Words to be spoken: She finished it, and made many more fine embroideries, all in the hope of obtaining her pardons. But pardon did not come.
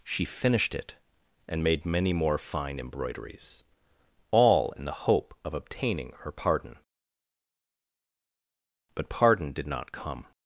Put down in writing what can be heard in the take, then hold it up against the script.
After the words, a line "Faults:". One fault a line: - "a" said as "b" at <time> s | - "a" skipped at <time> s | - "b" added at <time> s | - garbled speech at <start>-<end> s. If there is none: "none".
She finished it, and made many more fine embroideries, all in the hope of obtaining her pardon. But pardon did not come.
Faults:
- "pardons" said as "pardon" at 6.3 s